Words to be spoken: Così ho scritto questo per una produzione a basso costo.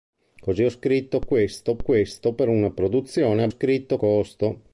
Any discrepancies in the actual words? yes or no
yes